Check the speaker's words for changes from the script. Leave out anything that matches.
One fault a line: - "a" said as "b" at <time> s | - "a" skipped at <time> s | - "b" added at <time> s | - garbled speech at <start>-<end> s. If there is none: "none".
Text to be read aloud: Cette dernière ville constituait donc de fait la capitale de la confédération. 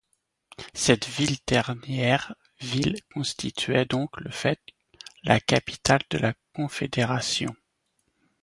none